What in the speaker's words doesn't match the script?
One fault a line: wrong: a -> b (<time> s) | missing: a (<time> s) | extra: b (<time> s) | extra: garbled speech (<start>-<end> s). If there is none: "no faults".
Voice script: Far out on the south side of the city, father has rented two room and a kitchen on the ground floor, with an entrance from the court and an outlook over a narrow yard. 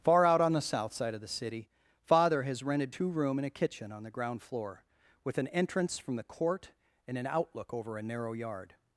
no faults